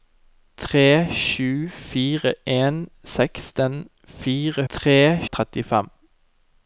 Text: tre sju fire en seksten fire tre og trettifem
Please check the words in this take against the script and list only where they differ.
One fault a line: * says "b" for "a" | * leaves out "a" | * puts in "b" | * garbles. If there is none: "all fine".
all fine